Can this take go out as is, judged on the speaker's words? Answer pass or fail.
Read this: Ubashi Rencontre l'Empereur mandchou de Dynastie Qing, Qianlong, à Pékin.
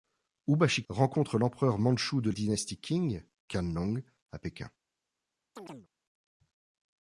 pass